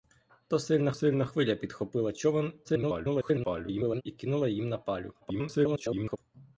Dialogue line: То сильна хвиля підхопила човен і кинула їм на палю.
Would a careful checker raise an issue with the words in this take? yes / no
yes